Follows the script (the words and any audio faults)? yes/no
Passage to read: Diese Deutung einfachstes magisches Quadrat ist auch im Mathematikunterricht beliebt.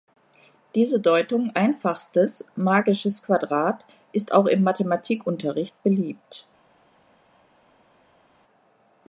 yes